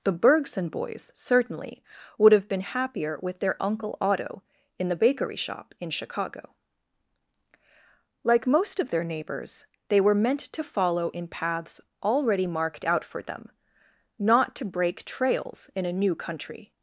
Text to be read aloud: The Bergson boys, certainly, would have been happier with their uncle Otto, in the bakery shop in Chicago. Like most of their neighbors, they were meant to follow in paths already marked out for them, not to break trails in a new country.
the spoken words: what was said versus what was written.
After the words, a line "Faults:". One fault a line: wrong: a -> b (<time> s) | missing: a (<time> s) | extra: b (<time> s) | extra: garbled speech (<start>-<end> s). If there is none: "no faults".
The Bergson boys, certainly, would have been happier with their uncle Otto, in the bakery shop in Chicago. Like most of their neighbors, they were meant to follow in paths already marked out for them, not to break trails in a new country.
Faults:
no faults